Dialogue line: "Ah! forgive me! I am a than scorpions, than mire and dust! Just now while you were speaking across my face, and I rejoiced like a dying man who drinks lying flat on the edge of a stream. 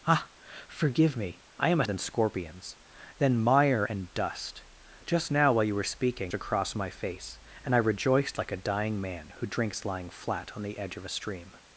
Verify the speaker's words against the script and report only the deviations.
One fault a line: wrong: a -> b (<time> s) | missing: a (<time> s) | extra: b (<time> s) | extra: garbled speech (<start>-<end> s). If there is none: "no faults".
no faults